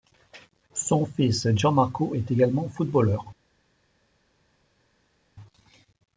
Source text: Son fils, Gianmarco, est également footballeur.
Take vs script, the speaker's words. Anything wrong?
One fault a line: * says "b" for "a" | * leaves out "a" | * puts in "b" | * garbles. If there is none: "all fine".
all fine